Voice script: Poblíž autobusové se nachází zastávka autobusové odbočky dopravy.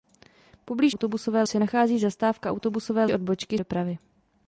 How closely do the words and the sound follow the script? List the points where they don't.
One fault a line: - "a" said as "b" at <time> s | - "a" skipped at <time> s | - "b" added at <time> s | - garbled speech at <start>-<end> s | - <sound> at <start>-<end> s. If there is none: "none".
none